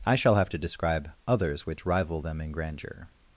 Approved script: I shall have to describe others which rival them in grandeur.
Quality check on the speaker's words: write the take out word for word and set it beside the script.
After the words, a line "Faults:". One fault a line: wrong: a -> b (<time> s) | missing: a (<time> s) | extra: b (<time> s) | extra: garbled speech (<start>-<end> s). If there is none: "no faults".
I shall have to describe others which rival them in grandeur.
Faults:
no faults